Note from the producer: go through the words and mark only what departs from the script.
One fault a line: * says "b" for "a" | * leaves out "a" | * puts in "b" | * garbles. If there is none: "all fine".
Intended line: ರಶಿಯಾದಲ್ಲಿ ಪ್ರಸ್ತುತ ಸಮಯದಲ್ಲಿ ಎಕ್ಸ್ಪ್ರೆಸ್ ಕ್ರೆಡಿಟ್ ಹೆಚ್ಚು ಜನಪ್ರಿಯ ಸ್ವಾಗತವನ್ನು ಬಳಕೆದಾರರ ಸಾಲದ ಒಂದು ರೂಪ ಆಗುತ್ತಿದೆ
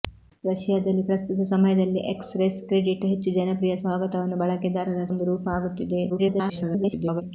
* leaves out "ಸಾಲದ"
* garbles